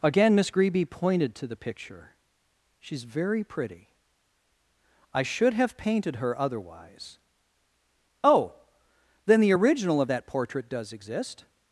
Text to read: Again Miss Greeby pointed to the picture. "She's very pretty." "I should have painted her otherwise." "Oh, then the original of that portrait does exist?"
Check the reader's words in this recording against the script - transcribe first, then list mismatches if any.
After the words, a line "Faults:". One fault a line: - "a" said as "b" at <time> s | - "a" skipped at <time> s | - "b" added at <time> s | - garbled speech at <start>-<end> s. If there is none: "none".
Again Miss Greeby pointed to the picture. "She's very pretty." "I should have painted her otherwise." "Oh, then the original of that portrait does exist?"
Faults:
none